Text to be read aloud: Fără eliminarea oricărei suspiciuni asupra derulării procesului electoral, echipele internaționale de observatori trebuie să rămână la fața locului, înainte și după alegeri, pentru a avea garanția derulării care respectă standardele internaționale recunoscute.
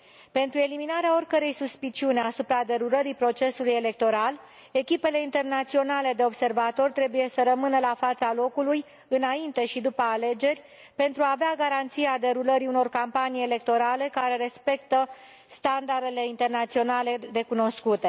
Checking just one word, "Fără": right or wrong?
wrong